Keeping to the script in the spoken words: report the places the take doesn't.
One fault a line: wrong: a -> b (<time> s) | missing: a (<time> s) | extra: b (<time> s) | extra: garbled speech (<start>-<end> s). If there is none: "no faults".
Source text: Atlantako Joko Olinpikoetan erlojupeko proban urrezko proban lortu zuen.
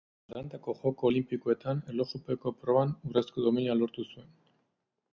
wrong: proban -> domina (3.5 s)